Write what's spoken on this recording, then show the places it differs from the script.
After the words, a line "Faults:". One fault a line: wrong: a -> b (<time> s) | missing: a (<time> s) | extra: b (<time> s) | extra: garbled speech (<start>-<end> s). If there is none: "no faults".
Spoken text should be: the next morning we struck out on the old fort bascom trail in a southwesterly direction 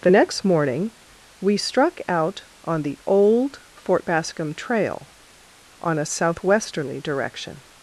the next morning we struck out on the old fort bascom trail on a southwesterly direction
Faults:
wrong: in -> on (5.8 s)